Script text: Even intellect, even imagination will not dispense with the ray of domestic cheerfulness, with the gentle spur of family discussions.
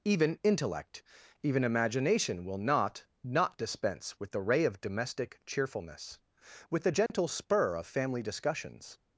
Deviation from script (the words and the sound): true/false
true